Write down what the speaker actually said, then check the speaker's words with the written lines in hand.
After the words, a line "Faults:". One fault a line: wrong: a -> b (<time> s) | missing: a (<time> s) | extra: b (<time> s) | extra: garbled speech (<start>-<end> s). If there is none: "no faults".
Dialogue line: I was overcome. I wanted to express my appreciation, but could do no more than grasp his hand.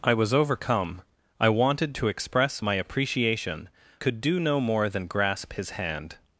I was overcome. I wanted to express my appreciation, could do no more than grasp his hand.
Faults:
missing: but (3.7 s)